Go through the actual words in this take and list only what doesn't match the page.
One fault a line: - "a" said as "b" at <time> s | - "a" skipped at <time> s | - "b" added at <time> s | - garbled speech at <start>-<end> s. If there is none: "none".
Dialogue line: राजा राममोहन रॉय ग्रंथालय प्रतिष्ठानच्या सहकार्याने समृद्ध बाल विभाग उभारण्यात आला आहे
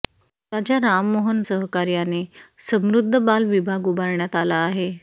- "रॉय ग्रंथालय प्रतिष्ठानच्या" skipped at 1.4 s